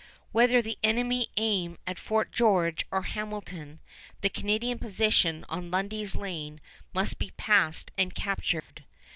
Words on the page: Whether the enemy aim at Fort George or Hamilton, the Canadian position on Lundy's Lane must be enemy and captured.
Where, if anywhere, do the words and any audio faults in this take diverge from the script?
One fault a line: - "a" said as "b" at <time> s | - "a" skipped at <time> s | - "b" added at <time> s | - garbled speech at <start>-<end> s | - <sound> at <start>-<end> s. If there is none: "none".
- "enemy" said as "passed" at 7.3 s
- dropout at 8.6-8.7 s